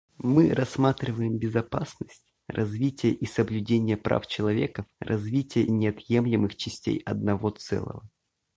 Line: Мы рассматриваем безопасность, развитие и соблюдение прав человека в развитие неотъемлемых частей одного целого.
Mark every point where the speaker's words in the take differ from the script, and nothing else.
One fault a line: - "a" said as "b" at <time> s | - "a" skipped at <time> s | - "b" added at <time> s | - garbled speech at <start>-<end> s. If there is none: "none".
none